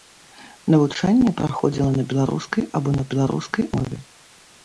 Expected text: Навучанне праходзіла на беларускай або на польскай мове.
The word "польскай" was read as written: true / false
false